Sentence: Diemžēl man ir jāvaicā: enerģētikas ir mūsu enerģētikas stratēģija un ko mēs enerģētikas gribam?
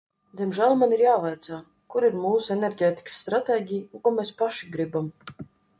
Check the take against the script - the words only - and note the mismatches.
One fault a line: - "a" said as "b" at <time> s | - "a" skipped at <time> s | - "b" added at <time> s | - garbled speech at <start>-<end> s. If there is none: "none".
- "enerģētikas" said as "kur" at 2.0 s
- "enerģētikas" said as "paši" at 4.4 s